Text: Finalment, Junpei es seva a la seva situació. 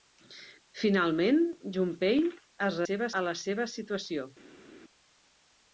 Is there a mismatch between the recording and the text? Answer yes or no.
no